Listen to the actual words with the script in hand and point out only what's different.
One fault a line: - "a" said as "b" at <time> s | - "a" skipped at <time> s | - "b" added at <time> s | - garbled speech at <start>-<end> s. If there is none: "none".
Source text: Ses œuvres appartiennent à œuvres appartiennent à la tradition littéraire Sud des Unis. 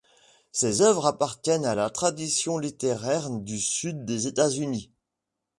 - "œuvres appartiennent à" skipped at 1.7 s
- "du" added at 3.3 s
- "États" added at 4.3 s